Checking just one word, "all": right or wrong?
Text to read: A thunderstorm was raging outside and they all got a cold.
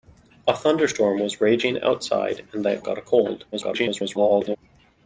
wrong